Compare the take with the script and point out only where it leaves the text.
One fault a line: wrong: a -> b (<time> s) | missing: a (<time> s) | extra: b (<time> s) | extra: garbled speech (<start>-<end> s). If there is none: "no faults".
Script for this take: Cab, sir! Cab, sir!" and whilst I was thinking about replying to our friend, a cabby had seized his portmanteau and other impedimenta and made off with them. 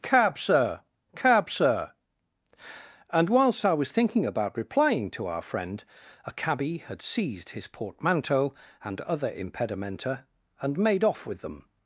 no faults